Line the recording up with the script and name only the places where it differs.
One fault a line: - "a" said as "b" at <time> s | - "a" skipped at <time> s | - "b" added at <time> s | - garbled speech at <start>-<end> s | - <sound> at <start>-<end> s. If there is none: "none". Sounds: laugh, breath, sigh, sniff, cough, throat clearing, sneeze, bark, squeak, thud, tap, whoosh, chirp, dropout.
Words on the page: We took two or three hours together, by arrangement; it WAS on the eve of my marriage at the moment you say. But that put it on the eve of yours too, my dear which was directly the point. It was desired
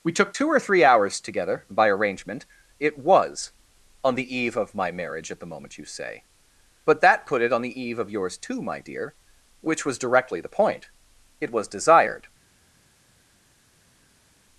none